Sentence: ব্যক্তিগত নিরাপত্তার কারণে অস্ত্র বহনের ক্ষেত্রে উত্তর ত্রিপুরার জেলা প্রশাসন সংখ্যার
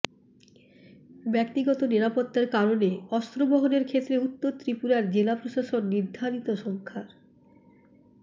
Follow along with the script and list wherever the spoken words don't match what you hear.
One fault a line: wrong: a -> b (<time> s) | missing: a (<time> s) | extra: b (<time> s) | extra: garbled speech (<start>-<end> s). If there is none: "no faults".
extra: নির্ধারিত (5.9 s)